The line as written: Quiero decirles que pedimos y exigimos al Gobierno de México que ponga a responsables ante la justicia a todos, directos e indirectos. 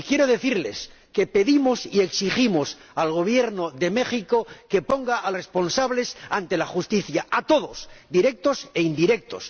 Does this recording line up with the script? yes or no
yes